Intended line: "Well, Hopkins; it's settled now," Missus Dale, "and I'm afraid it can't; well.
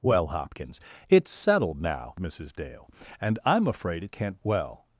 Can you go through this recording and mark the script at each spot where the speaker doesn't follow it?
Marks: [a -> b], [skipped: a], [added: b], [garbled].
"Well, Hopkins; it's settled now," Missus Dale, "and I'm afraid it can't; well.